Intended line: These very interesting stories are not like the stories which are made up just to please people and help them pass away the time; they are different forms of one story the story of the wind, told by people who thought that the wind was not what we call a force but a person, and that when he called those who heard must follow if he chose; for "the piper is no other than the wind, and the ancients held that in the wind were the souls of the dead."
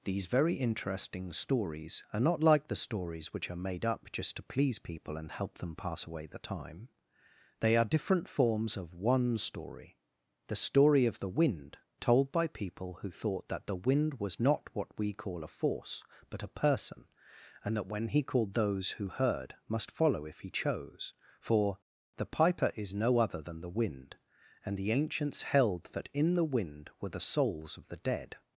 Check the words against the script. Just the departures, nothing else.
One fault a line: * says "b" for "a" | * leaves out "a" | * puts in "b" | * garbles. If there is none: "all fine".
all fine